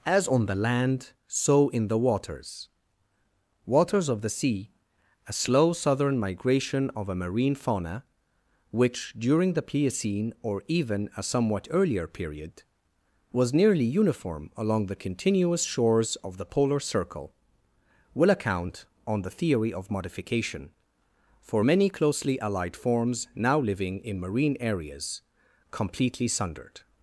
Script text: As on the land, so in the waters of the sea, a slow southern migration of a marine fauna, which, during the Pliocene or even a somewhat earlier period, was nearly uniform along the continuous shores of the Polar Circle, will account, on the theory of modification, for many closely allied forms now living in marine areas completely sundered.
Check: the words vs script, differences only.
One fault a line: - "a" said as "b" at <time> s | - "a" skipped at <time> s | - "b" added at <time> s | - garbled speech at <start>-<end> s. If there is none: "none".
- "waters" added at 3.6 s